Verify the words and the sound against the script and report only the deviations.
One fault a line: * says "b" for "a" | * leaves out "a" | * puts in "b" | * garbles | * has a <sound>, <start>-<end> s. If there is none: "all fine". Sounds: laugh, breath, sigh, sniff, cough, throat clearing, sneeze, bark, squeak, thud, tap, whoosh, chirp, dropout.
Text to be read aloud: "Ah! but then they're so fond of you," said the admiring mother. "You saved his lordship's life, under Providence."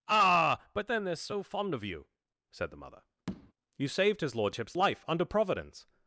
* leaves out "admiring"
* has a tap, 3.3-3.5 s